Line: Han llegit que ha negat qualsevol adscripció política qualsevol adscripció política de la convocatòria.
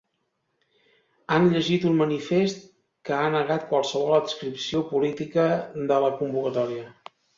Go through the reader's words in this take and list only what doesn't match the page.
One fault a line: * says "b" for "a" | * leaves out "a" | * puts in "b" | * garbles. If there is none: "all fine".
* puts in "un manifest"
* leaves out "qualsevol adscripció política"